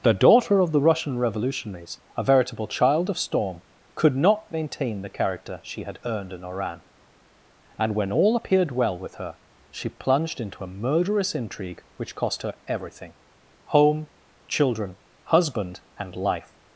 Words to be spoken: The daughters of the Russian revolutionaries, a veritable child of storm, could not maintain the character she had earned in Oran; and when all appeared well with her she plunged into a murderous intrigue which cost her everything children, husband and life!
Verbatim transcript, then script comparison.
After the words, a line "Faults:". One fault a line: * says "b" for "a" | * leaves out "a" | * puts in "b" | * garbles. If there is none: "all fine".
The daughter of the Russian revolutionaries, a veritable child of storm, could not maintain the character she had earned in Oran; and when all appeared well with her she plunged into a murderous intrigue which cost her everything home, children, husband and life!
Faults:
* says "daughter" for "daughters"
* puts in "home"